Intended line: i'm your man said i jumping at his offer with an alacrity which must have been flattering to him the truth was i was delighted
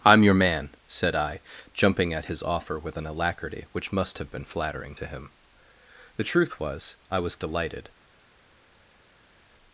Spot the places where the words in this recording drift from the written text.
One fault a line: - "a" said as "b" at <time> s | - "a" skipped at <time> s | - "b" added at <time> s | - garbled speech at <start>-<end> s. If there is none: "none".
none